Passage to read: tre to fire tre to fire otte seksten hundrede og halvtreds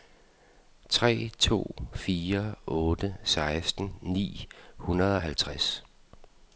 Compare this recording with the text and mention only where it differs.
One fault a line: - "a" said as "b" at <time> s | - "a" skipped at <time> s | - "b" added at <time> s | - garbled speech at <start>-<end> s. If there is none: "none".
- "tre to fire" skipped at 2.5 s
- "ni" added at 4.0 s